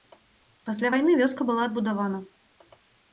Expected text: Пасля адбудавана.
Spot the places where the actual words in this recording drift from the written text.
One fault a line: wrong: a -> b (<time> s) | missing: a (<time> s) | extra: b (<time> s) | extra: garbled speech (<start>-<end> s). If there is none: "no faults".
extra: вайны вёска была (0.9 s)